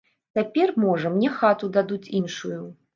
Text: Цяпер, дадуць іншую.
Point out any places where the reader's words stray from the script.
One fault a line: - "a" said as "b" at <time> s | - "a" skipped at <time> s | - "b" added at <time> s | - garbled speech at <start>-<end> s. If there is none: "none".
- "можа мне хату" added at 0.9 s